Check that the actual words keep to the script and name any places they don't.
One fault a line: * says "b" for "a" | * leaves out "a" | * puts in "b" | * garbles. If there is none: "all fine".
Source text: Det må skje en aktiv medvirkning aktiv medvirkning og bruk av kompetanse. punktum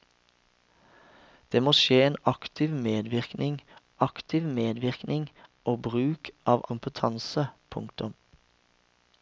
all fine